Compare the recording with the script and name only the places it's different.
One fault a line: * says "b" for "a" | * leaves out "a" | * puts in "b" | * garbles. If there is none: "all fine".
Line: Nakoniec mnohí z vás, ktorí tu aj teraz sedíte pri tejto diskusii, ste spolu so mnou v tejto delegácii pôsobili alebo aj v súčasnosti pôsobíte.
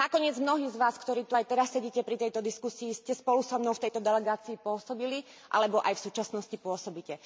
all fine